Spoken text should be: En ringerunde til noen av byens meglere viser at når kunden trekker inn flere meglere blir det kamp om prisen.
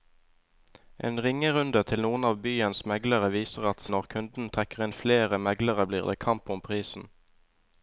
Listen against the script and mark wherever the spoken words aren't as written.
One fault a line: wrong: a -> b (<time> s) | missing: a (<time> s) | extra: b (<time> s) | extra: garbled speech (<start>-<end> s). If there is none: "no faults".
no faults